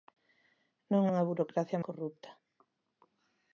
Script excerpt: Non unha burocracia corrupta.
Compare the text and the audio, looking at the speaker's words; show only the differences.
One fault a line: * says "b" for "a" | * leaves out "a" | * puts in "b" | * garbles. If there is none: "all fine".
all fine